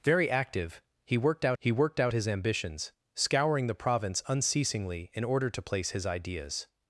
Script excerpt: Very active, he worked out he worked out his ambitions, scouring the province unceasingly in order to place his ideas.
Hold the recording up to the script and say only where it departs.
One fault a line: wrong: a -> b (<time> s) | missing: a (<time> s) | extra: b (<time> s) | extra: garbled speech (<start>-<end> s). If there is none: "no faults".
no faults